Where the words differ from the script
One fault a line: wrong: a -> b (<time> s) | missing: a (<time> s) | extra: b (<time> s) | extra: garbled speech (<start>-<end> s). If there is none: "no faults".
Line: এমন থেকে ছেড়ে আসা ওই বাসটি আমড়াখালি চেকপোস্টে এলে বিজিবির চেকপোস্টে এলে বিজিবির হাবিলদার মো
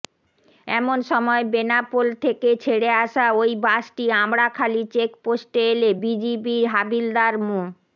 extra: সময় বেনাপোল (1.1 s)
missing: চেকপোস্টে এলে বিজিবির (6.6 s)